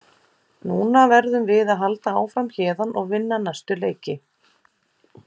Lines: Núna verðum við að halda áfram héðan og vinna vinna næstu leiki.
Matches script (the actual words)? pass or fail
fail